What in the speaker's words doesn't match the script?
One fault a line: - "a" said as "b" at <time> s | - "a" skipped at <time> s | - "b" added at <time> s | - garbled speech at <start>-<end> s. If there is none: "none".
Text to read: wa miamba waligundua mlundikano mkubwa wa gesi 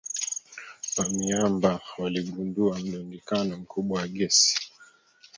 none